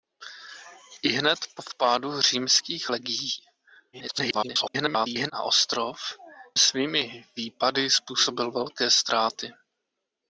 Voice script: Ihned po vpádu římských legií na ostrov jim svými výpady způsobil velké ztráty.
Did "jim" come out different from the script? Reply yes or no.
yes